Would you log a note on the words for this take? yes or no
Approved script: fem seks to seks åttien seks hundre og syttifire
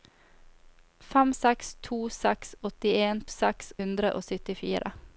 no